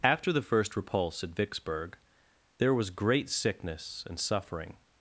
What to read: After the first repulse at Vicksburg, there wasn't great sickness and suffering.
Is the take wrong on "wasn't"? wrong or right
wrong